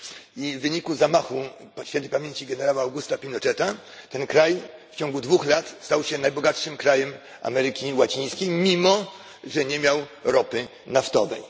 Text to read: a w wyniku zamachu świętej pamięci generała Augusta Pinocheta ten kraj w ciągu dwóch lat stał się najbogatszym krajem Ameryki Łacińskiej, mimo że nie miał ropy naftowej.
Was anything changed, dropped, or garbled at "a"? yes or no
yes